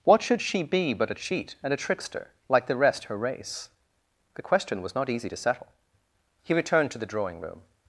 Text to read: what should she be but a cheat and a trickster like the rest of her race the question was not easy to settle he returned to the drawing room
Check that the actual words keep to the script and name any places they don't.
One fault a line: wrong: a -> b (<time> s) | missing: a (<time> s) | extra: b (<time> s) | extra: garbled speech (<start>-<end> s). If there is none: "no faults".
missing: of (3.0 s)